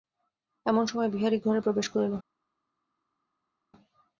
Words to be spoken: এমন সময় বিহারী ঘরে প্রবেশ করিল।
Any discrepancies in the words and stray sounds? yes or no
no